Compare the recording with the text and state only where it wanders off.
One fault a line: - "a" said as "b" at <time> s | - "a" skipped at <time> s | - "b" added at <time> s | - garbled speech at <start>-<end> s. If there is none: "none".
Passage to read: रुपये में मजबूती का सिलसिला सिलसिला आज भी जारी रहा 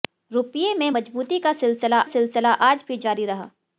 none